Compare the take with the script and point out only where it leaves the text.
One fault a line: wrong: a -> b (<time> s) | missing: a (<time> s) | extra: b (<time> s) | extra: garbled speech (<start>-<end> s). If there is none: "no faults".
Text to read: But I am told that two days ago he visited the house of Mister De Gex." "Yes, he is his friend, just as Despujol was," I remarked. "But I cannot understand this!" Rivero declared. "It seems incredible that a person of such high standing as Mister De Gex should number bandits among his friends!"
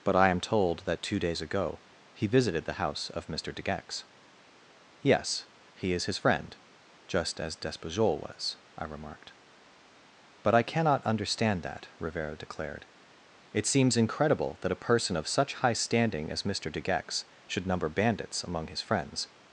wrong: this -> that (11.6 s)